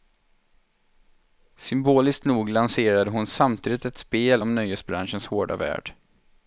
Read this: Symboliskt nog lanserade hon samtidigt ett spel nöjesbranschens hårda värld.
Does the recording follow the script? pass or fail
fail